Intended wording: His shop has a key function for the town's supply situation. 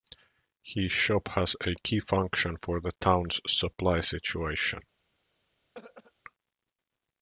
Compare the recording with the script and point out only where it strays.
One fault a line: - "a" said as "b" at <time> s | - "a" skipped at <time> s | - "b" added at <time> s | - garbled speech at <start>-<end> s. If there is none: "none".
none